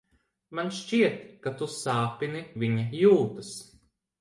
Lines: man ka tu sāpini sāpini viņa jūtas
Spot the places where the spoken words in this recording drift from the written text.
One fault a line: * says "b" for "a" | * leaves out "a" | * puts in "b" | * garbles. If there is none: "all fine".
* puts in "šķiet"
* leaves out "sāpini"